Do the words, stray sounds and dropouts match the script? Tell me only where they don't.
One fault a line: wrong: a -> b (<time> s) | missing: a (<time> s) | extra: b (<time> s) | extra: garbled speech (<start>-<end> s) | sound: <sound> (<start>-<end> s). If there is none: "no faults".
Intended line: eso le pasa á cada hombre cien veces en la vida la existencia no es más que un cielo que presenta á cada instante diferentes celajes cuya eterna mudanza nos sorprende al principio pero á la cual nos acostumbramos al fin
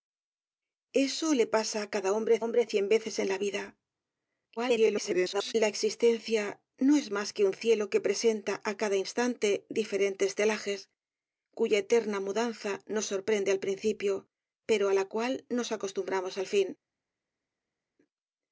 extra: hombre (2.4 s)
extra: garbled speech (4.6-5.5 s)